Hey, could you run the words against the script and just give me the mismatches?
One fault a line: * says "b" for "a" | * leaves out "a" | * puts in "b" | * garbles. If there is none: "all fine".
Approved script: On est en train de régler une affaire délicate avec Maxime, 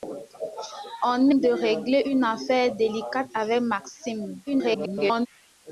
* leaves out "est en train"
* garbles